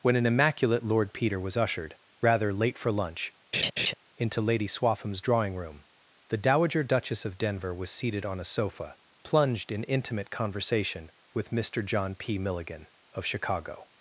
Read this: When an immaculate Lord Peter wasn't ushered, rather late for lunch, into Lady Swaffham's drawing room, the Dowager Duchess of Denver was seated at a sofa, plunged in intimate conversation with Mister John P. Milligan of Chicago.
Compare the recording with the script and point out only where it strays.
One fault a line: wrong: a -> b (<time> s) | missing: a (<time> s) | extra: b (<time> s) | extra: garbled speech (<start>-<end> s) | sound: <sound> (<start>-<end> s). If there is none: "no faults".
wrong: wasn't -> was (1.4 s)
sound: laugh (3.5-3.9 s)
wrong: at -> on (8.2 s)